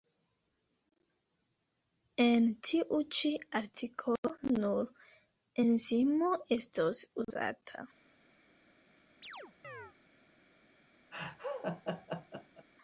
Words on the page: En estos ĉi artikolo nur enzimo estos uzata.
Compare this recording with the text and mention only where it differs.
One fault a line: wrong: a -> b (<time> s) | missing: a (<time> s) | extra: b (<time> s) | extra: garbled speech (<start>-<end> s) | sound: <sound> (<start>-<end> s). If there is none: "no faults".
wrong: estos -> tiu (2.7 s)
sound: chirp (9.2-9.9 s)
sound: laugh (11.1-12.7 s)